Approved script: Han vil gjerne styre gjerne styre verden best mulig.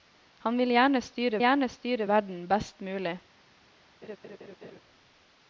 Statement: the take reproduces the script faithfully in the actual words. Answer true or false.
true